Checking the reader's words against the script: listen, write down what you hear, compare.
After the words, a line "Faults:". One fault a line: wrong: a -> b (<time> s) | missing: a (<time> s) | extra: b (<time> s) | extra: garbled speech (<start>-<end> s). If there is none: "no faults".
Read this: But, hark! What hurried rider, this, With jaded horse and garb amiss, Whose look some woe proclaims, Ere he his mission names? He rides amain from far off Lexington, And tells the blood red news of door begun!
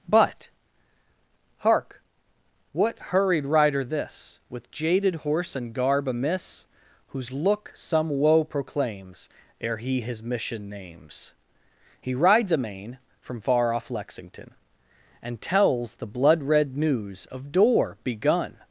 But, hark! What hurried rider, this, With jaded horse and garb amiss, Whose look some woe proclaims, Ere he his mission names? He rides amain from far off Lexington, And tells the blood red news of door begun!
Faults:
no faults